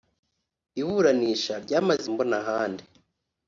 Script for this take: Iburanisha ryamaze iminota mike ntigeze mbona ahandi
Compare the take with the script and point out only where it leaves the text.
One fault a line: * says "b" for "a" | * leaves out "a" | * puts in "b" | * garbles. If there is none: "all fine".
* leaves out "iminota mike ntigeze"